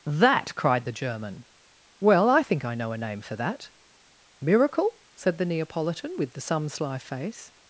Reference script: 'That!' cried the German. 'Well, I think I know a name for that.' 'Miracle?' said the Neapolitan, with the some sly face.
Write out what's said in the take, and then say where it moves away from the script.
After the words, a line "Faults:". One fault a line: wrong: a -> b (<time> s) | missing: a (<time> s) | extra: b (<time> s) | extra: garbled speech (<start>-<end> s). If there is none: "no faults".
'That!' cried the German. 'Well, I think I know a name for that.' 'Miracle?' said the Neapolitan, with the some sly face.
Faults:
no faults